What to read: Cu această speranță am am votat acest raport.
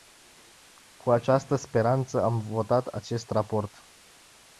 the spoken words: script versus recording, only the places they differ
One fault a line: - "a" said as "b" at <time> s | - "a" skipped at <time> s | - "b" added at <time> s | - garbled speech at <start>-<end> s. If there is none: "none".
- "am" skipped at 2.4 s